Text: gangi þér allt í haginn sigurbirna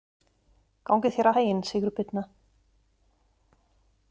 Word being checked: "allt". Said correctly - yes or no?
no